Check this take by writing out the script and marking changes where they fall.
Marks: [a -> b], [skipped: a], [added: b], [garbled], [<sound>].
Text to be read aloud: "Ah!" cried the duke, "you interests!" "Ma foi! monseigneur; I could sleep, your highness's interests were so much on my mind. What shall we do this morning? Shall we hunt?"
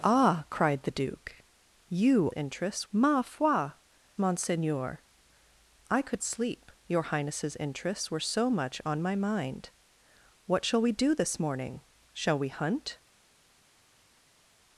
"Ah!" cried the duke, "you interests!" "Ma foi! monseigneur; I could sleep, your highness's interests were so much on my mind. What shall we do this morning? Shall we hunt?"